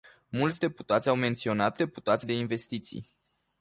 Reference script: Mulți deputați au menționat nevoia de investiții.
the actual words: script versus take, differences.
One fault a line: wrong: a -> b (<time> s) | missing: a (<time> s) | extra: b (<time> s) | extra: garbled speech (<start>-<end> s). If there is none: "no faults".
wrong: nevoia -> deputați (1.8 s)